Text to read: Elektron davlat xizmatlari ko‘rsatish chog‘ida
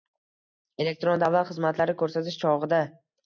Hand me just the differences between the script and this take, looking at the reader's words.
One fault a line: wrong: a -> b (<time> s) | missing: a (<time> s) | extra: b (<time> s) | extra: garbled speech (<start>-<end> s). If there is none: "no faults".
no faults